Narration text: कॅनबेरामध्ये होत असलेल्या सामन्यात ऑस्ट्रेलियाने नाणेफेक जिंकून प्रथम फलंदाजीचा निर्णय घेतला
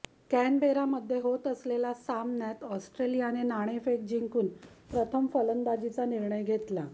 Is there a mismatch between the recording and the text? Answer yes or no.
no